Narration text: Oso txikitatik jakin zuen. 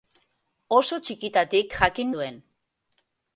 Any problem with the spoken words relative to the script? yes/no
no